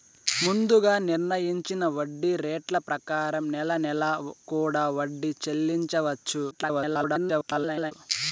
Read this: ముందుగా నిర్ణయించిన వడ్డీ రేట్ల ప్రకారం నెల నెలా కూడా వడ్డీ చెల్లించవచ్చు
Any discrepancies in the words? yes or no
yes